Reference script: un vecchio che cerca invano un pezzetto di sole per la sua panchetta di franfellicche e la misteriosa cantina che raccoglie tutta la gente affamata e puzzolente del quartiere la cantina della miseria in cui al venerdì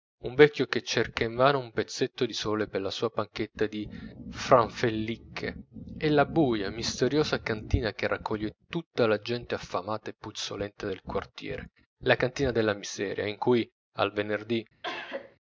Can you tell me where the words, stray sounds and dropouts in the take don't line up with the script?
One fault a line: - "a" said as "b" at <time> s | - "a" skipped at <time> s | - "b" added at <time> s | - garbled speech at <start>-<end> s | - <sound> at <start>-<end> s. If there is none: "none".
- "buia" added at 6.2 s
- cough at 14.8-15.4 s